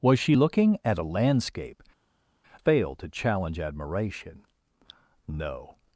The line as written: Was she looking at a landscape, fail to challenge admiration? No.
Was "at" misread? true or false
false